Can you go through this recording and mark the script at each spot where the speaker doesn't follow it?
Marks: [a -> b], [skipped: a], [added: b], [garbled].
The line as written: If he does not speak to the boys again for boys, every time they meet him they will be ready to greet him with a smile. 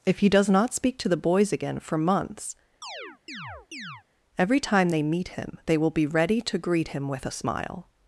If he does not speak to the boys again for [boys, -> months] every time they meet him they will be ready to greet him with a smile.